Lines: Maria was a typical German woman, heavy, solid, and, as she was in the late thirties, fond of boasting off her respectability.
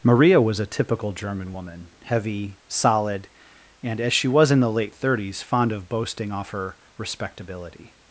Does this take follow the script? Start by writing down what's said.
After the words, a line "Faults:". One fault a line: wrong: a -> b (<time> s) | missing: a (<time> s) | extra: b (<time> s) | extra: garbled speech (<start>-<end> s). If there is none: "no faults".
Maria was a typical German woman, heavy, solid, and, as she was in the late thirties, fond of boasting off her respectability.
Faults:
no faults